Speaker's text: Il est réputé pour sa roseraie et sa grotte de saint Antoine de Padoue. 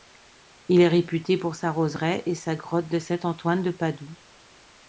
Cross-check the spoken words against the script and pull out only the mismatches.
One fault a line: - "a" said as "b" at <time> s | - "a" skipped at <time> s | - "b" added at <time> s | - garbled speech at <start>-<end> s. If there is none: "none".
none